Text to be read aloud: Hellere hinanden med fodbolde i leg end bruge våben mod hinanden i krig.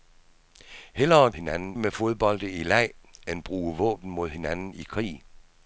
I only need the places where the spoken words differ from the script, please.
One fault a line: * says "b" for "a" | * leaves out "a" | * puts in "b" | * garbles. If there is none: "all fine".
all fine